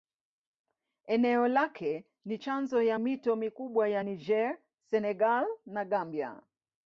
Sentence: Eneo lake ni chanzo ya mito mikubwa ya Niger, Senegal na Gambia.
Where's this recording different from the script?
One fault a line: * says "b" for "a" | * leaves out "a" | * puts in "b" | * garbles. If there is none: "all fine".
all fine